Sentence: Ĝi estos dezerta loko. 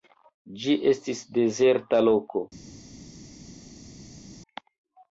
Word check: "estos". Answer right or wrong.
wrong